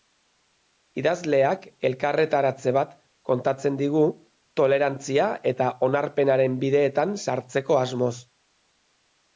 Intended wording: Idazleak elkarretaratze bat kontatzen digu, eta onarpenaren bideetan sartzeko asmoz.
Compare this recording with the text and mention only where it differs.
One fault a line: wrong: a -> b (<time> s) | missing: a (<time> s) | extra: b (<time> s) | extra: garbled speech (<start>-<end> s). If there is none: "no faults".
extra: tolerantzia (4.6 s)